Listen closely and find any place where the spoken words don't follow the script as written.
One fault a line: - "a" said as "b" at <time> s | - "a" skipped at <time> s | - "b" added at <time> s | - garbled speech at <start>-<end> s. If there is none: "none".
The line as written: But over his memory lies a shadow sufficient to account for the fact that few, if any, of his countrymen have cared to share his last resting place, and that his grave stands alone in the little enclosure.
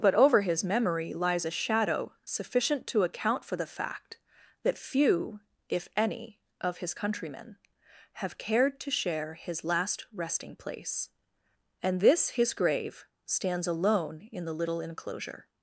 - "that" said as "this" at 12.0 s